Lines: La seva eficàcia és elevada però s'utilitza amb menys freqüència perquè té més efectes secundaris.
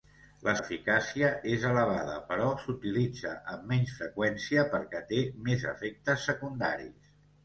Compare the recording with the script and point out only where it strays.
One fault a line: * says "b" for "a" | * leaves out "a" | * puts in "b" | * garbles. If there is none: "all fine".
* leaves out "seva"